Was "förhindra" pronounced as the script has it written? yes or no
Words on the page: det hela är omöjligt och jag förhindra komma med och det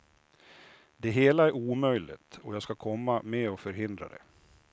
no